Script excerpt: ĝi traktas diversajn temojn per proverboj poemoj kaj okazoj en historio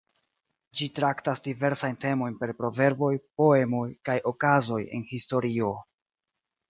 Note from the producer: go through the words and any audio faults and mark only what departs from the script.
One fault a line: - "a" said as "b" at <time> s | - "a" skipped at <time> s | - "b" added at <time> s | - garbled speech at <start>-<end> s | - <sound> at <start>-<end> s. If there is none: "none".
none